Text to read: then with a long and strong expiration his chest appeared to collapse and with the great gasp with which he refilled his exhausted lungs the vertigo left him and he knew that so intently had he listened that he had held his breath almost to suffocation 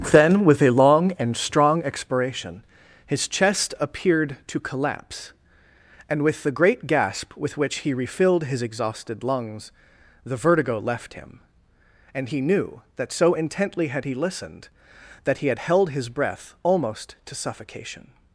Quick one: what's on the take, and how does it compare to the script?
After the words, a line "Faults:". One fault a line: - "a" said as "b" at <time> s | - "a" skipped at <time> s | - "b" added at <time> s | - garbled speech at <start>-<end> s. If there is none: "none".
then with a long and strong expiration his chest appeared to collapse and with the great gasp with which he refilled his exhausted lungs the vertigo left him and he knew that so intently had he listened that he had held his breath almost to suffocation
Faults:
none